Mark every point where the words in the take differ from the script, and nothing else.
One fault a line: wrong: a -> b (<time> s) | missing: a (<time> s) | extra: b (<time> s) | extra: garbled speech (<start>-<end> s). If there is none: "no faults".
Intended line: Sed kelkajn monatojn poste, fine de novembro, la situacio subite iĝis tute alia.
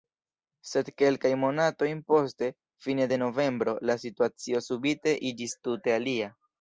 no faults